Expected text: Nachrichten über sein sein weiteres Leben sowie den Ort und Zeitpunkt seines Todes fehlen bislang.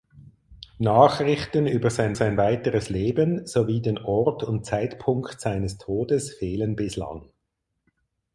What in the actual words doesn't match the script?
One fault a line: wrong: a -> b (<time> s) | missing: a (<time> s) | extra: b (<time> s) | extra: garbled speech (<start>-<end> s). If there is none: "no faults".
no faults